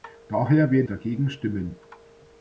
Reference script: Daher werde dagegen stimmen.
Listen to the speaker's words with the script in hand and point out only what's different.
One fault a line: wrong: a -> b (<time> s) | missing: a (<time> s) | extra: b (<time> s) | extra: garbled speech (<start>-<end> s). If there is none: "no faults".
no faults